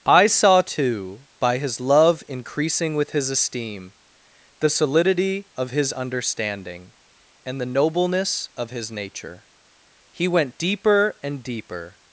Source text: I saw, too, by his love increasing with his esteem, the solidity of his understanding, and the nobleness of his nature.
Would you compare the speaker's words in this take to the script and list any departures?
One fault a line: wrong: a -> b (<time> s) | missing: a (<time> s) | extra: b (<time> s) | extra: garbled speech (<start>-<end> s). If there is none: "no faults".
extra: He went deeper and deeper (10.1 s)